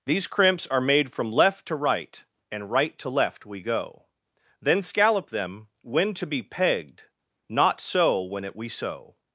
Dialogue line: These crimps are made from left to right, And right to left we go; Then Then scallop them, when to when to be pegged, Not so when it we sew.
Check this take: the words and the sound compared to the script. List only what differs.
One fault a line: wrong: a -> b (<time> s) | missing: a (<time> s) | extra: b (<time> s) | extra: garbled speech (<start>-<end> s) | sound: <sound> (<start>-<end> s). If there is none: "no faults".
missing: Then (4.8 s)
missing: when to (6.3 s)